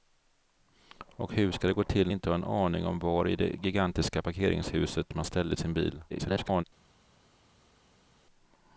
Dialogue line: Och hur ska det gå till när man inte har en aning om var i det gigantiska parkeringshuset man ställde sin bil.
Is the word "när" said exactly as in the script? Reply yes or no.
no